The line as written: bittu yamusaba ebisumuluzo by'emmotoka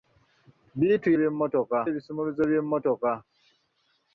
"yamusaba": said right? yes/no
no